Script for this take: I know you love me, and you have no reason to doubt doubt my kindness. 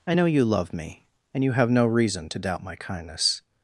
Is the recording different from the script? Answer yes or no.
yes